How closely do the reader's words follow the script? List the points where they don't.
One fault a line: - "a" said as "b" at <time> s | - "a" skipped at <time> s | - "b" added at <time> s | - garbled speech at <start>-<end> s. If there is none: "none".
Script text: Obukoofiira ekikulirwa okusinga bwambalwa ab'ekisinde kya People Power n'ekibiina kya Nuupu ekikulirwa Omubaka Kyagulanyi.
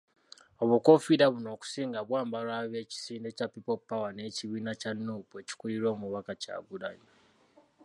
- "ekikulirwa" said as "buno" at 1.3 s